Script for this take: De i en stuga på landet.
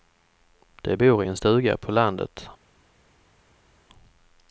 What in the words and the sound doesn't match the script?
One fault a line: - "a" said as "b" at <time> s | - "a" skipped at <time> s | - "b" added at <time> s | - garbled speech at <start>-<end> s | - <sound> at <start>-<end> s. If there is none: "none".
- "bor" added at 0.9 s